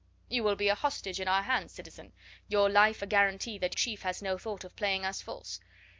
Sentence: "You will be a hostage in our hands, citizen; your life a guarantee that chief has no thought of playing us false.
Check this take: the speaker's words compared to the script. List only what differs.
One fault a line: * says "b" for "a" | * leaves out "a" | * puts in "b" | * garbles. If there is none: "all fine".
all fine